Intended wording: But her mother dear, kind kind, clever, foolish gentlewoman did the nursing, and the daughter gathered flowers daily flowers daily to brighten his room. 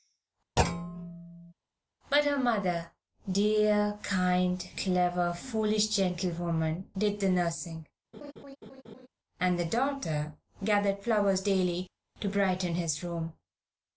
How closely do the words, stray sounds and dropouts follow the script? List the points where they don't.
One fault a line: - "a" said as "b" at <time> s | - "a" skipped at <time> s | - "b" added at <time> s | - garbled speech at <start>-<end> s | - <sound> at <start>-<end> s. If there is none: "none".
- thud at 0.6-1.5 s
- "kind" skipped at 4.6 s
- laugh at 8.1-9.1 s
- "flowers daily" skipped at 11.9 s